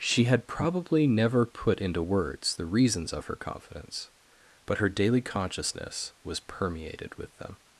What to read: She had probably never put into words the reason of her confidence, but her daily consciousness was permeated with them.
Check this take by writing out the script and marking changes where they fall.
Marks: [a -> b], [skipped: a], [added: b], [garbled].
She had probably never put into words the [reason -> reasons] of her confidence, but her daily consciousness was permeated with them.